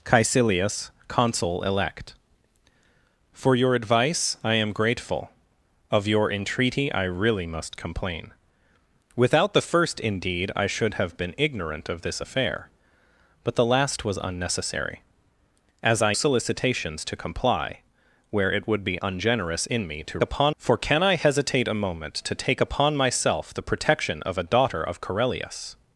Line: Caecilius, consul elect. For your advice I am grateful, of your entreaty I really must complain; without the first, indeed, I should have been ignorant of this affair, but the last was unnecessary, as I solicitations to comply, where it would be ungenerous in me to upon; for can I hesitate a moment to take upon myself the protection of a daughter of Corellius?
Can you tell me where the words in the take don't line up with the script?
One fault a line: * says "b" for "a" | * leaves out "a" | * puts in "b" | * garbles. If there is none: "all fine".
all fine